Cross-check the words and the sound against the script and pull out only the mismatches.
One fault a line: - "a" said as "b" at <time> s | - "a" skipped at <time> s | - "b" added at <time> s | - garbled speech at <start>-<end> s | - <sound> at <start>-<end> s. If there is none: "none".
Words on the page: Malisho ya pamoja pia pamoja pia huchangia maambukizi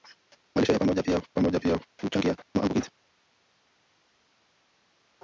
none